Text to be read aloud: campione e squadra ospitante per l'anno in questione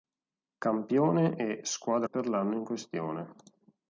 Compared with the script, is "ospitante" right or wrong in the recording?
wrong